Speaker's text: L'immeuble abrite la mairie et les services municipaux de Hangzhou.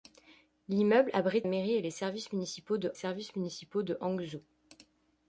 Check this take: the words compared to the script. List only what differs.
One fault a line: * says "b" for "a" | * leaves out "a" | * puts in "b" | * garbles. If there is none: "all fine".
* leaves out "la"
* puts in "services municipaux de"